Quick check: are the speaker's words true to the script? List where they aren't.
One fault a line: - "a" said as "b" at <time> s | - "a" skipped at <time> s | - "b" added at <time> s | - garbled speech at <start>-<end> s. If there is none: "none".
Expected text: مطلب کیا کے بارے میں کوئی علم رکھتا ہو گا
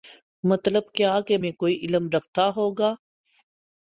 - "بارے" skipped at 1.4 s